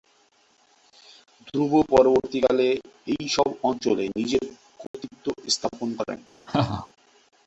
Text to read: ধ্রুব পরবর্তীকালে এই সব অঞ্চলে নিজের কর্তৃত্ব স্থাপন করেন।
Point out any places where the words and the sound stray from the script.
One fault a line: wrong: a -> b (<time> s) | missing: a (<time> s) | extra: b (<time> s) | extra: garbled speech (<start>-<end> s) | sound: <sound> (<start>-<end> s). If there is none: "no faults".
sound: dropout (4.9-4.9 s)
sound: laugh (6.5-6.9 s)